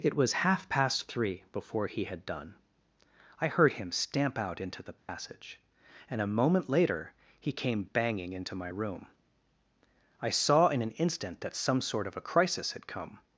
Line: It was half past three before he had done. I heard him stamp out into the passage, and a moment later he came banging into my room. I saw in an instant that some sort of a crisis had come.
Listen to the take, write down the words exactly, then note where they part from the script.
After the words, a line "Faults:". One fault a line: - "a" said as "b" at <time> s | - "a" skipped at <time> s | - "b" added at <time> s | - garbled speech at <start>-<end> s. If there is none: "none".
It was half past three before he had done. I heard him stamp out into the passage, and a moment later he came banging into my room. I saw in an instant that some sort of a crisis had come.
Faults:
none